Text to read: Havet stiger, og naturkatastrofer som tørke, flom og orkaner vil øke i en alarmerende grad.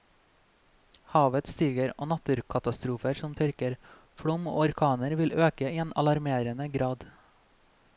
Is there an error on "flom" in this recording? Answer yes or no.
no